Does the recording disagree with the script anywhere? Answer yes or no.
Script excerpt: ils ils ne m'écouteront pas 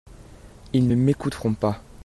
yes